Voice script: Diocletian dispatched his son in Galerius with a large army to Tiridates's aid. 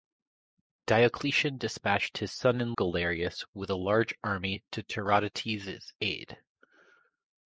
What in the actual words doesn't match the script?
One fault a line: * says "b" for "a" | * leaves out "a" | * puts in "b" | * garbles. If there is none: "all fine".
all fine